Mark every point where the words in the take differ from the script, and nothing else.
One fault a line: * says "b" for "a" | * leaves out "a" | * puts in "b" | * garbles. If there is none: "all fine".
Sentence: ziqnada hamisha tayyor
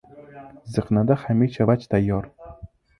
* puts in "vaj"